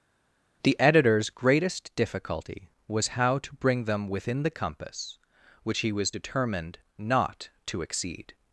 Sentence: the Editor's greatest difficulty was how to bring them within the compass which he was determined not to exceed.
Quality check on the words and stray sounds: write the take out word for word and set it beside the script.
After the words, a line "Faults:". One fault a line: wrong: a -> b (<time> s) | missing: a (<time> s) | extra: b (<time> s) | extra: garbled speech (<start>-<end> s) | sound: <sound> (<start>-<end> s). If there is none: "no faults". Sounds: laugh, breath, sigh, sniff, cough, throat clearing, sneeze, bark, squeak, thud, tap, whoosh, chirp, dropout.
the Editor's greatest difficulty was how to bring them within the compass which he was determined not to exceed.
Faults:
no faults